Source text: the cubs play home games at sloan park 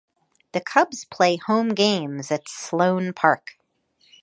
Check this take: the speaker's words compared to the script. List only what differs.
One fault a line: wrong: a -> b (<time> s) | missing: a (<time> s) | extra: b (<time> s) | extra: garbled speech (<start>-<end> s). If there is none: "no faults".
no faults